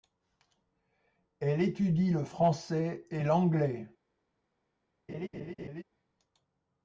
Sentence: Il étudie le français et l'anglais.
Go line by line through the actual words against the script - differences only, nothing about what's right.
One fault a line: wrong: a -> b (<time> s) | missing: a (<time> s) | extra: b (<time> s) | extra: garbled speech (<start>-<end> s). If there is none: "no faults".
wrong: Il -> Elle (1.4 s)